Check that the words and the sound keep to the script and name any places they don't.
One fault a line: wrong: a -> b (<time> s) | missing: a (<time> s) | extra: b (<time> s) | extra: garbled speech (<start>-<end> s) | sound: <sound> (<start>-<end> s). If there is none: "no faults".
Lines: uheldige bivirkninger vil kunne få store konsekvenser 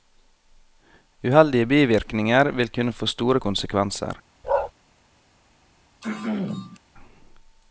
sound: bark (4.4-4.7 s)
sound: throat clearing (6.0-6.8 s)